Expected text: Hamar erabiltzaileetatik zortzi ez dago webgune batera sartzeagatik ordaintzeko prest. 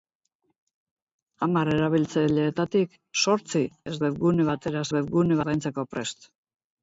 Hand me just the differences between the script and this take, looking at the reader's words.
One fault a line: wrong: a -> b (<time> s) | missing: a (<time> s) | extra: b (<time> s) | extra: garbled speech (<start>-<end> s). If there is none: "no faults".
missing: dago (4.0 s)
wrong: sartzeagatik -> webgune (5.0 s)